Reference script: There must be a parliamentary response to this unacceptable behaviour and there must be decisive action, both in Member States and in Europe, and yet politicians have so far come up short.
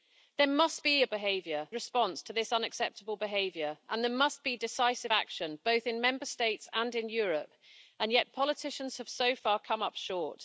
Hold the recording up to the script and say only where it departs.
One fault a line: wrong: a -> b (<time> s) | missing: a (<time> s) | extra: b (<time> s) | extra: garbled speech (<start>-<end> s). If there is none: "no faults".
wrong: parliamentary -> behaviour (1.1 s)